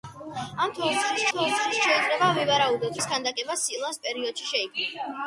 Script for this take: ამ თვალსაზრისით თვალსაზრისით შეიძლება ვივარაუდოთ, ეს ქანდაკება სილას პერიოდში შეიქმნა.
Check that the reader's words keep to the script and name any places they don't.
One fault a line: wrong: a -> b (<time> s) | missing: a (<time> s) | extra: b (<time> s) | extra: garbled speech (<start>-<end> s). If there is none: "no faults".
no faults